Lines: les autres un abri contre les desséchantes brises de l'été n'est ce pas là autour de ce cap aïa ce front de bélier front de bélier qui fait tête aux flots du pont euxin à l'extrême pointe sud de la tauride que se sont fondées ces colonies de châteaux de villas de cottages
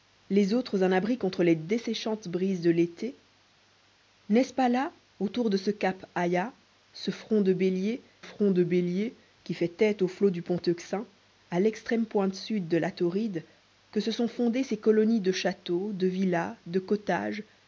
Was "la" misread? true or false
false